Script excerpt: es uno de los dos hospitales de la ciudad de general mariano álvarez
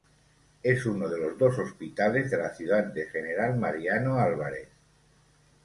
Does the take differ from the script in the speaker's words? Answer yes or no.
no